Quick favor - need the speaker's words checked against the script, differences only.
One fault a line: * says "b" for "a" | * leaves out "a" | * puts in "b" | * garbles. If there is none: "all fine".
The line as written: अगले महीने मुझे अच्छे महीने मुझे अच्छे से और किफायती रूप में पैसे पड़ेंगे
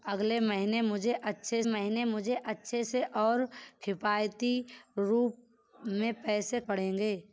all fine